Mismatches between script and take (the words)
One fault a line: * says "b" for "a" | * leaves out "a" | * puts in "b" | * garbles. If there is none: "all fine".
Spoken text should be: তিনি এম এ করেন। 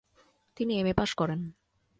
* puts in "পাশ"